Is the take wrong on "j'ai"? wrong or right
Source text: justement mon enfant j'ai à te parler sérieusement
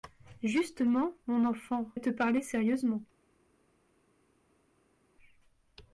wrong